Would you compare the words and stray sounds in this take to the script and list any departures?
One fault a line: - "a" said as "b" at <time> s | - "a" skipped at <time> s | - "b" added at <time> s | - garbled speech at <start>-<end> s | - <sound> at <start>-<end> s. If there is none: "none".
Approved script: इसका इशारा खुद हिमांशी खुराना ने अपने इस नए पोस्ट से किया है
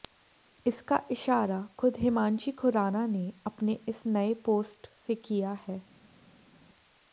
none